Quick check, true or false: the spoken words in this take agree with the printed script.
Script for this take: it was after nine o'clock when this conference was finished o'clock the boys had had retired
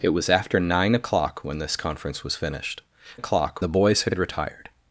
true